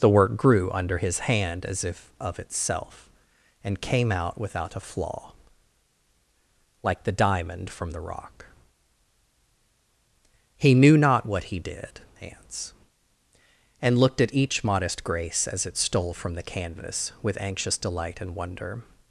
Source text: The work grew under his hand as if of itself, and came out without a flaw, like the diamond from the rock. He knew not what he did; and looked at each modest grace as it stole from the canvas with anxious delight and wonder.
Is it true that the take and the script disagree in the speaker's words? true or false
true